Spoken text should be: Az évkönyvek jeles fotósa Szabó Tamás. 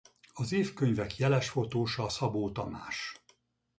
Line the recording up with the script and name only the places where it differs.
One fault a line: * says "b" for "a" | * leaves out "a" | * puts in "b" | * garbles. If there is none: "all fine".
all fine